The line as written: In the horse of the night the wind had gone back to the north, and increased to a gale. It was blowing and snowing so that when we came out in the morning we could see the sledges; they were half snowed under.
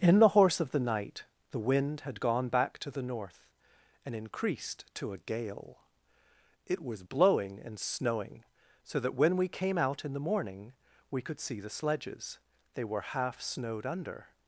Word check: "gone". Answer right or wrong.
right